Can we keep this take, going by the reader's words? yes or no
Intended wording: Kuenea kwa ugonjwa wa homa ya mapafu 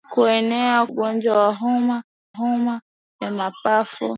no